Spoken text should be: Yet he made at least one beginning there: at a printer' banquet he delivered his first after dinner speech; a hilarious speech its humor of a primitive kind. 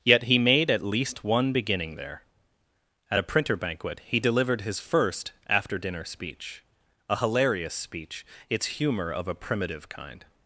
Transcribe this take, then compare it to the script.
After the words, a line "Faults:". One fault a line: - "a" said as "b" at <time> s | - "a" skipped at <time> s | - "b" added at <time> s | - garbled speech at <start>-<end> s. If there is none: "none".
Yet he made at least one beginning there: at a printer' banquet he delivered his first after dinner speech; a hilarious speech its humor of a primitive kind.
Faults:
none